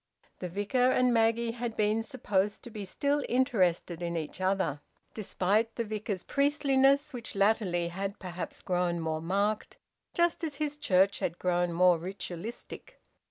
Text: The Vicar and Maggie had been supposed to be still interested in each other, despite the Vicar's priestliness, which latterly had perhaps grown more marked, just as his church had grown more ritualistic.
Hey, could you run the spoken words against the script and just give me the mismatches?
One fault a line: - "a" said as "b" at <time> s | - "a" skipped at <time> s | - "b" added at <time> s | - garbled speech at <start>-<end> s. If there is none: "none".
none